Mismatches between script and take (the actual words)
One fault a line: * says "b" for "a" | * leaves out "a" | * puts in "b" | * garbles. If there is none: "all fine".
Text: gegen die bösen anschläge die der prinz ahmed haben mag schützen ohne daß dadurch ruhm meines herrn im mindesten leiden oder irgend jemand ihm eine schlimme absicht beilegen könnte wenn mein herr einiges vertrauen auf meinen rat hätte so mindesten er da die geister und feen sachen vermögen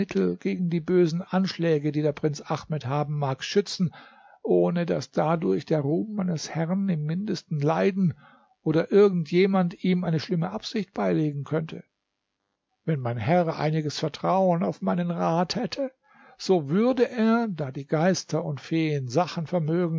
* puts in "der"
* says "würde" for "mindesten"